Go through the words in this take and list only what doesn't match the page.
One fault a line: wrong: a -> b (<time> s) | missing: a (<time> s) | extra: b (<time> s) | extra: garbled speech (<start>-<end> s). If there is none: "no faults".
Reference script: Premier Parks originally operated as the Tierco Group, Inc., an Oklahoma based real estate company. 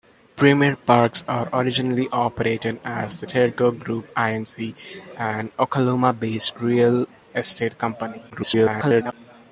extra: garbled speech (8.3-9.1 s)